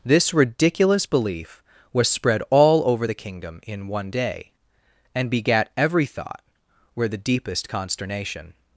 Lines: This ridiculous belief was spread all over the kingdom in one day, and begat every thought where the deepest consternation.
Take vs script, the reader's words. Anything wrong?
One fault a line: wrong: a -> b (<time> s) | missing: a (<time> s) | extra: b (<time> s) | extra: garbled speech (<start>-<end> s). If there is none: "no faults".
no faults